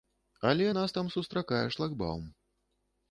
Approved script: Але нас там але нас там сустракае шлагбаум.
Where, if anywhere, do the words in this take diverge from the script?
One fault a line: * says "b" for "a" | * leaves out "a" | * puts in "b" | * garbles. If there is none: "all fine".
* leaves out "але нас там"